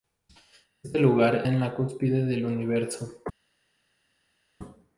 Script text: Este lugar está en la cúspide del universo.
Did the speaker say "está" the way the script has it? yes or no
no